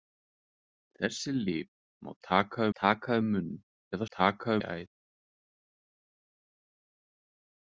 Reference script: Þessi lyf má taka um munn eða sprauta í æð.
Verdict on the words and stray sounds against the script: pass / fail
fail